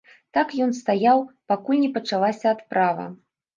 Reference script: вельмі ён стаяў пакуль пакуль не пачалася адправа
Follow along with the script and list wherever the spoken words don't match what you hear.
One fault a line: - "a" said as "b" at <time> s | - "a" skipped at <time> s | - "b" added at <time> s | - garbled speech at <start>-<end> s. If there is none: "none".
- "вельмі" said as "так" at 0.4 s
- "пакуль" skipped at 1.8 s